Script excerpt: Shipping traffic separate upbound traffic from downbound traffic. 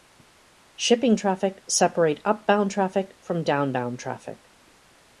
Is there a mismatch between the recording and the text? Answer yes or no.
no